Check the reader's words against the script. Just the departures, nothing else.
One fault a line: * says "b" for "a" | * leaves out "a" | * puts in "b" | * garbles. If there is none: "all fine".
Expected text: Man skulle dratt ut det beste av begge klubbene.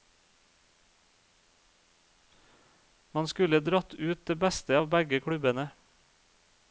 all fine